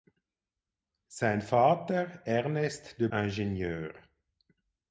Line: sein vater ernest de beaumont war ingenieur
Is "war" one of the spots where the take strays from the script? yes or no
yes